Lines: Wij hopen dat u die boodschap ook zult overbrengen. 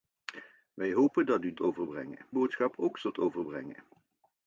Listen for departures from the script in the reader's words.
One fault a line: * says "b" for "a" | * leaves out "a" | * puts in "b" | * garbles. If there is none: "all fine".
* says "overbrengen" for "die"